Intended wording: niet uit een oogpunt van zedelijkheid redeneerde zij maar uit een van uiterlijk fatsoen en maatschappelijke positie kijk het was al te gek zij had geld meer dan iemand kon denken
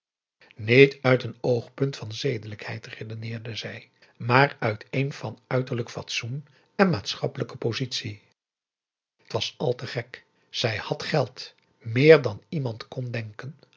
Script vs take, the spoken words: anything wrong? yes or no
yes